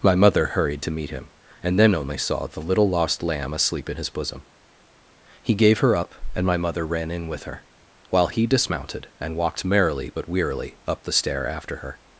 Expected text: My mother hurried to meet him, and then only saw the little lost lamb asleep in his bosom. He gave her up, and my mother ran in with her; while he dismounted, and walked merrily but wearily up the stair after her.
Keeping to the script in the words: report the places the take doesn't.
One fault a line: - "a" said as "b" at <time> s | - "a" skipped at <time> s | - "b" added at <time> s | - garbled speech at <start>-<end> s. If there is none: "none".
none